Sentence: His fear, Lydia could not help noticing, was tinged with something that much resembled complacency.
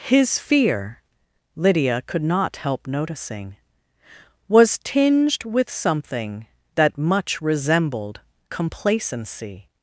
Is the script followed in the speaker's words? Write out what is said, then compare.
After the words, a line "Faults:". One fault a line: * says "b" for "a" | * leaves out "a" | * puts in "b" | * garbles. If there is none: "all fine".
His fear, Lydia could not help noticing, was tinged with something that much resembled complacency.
Faults:
all fine